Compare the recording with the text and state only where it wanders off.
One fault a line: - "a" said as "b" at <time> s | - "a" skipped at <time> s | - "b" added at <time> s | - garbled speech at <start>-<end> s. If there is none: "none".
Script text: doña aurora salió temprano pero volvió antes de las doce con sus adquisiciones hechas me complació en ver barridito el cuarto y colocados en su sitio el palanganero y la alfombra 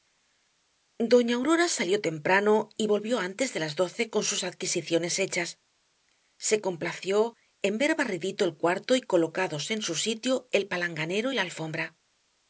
- "pero" said as "y" at 2.8 s
- "me" said as "se" at 6.4 s